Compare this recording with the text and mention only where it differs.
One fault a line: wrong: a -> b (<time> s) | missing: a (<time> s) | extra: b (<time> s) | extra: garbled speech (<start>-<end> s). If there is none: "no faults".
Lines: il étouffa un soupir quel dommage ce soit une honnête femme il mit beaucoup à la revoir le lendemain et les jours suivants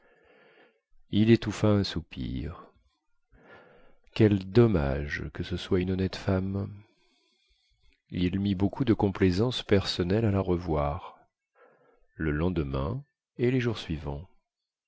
extra: que (5.3 s)
extra: de complaisance personnelle (8.8 s)